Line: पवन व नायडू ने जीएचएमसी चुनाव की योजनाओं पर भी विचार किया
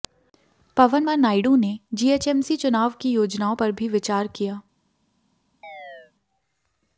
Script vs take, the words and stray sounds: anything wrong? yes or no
yes